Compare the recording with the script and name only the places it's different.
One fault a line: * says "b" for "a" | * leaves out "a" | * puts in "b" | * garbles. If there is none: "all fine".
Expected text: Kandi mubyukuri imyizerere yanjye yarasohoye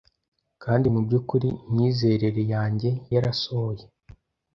all fine